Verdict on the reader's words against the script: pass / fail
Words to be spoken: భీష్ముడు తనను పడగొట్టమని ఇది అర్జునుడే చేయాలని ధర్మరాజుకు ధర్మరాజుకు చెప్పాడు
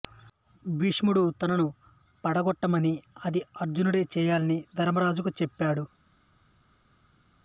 fail